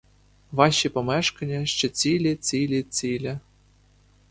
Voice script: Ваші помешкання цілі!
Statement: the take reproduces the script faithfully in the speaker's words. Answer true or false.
false